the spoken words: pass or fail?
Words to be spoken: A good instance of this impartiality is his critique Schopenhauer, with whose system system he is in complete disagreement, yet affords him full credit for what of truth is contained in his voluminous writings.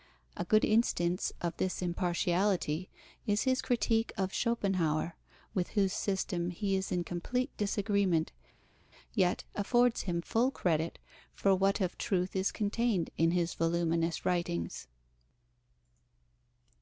fail